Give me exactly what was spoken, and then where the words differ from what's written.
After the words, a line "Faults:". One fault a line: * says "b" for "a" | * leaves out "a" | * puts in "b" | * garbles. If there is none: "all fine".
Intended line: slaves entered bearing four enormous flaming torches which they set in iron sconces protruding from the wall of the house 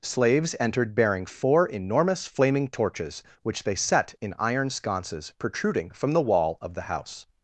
slaves entered bearing four enormous flaming torches which they set in iron sconces protruding from the wall of the house
Faults:
all fine